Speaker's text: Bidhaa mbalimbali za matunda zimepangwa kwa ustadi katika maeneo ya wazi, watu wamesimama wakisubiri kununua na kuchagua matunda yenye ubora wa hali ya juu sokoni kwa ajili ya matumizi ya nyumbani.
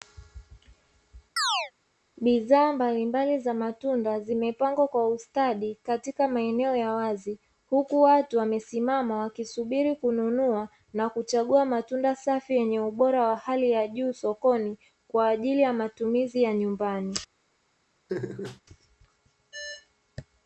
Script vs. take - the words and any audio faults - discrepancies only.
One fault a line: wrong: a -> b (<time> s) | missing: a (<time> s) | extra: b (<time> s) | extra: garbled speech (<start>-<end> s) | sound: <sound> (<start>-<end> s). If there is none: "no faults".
sound: chirp (1.4-1.7 s)
extra: huku (7.7 s)
extra: safi (12.1 s)
sound: laugh (18.1-18.6 s)